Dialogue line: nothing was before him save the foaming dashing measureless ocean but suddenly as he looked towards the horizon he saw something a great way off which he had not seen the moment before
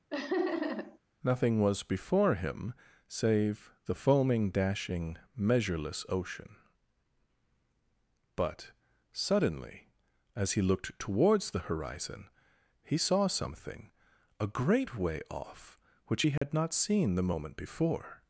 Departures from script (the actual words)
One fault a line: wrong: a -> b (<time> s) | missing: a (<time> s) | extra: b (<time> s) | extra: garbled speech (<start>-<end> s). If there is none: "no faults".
no faults